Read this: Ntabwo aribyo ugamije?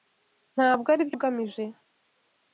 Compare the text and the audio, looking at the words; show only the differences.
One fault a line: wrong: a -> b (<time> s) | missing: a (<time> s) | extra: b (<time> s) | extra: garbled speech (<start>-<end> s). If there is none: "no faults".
no faults